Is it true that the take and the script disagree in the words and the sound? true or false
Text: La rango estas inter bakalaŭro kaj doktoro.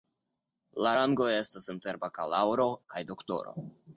false